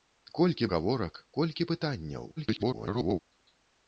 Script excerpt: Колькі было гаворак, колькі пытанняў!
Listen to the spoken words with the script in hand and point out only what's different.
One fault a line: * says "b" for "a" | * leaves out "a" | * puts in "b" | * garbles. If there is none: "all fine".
* leaves out "было"
* garbles